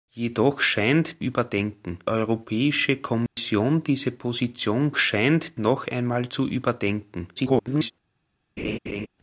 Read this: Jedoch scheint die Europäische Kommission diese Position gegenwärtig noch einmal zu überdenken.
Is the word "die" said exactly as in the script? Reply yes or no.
no